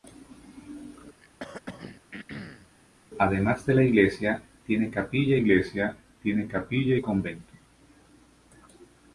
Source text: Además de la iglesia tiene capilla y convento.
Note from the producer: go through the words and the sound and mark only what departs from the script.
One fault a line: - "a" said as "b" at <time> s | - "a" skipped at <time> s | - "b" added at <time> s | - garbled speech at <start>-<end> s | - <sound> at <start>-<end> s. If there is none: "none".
- throat clearing at 1.2-2.7 s
- "iglesia tiene capilla" added at 5.4 s